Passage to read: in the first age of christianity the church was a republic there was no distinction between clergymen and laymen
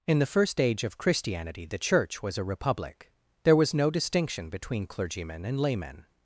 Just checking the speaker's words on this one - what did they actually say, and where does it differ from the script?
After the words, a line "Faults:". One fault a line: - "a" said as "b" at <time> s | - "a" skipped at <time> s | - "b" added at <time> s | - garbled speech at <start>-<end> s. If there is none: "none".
in the first age of christianity the church was a republic there was no distinction between clergymen and laymen
Faults:
none